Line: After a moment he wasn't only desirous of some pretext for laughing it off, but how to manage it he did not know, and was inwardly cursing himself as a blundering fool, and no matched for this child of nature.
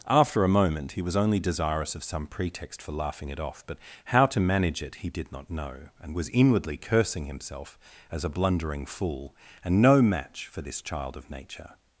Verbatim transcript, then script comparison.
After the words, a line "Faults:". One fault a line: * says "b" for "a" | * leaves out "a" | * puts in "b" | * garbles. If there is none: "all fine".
After a moment he was only desirous of some pretext for laughing it off, but how to manage it he did not know, and was inwardly cursing himself as a blundering fool, and no match for this child of nature.
Faults:
* says "was" for "wasn't"
* says "match" for "matched"